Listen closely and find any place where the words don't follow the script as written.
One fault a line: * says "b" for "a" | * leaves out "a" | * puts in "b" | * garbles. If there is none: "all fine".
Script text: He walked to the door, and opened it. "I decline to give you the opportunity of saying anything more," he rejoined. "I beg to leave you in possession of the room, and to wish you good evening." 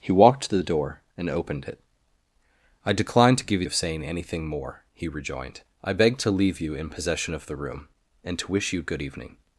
* leaves out "the opportunity"